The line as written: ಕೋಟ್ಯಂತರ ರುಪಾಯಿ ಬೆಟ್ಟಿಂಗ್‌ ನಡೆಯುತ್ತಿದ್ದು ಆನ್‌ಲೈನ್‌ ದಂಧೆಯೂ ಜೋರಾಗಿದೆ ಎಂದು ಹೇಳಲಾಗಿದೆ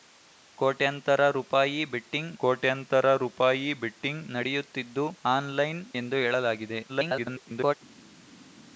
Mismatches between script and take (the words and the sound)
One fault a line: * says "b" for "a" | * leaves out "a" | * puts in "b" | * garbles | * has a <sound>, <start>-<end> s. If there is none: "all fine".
* puts in "ಕೋಟ್ಯಂತರ ರುಪಾಯಿ ಬೆಟ್ಟಿಂಗ್"
* leaves out "ದಂಧೆಯೂ ಜೋರಾಗಿದೆ"
* garbles